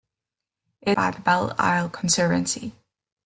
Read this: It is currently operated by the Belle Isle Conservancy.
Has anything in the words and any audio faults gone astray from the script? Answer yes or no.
yes